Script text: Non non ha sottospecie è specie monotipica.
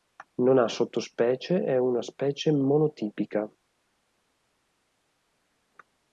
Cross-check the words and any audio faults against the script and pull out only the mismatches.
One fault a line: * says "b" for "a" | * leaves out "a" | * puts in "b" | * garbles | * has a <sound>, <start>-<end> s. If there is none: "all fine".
* leaves out "non"
* puts in "una"